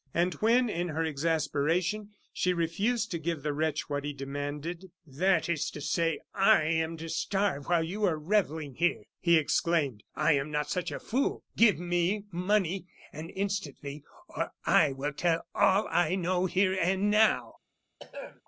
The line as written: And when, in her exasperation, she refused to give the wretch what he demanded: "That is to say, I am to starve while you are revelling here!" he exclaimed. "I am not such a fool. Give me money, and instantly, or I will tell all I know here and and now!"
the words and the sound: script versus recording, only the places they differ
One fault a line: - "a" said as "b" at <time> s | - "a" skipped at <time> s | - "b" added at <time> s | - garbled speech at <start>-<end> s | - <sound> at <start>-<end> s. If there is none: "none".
- "and" skipped at 17.1 s
- throat clearing at 18.0-18.4 s